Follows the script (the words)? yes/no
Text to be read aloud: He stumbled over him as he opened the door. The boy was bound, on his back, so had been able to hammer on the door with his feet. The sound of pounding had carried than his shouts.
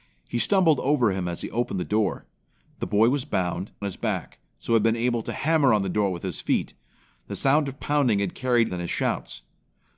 yes